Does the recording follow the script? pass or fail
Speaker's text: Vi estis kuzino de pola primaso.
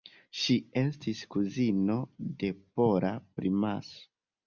fail